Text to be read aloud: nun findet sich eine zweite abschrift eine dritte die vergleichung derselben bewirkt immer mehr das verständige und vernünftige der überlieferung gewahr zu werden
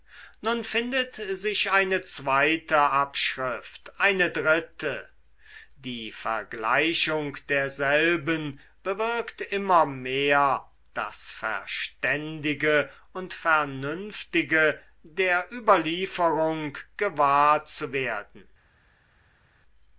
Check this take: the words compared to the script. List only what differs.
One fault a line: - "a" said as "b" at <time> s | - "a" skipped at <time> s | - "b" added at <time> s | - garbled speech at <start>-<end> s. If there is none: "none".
none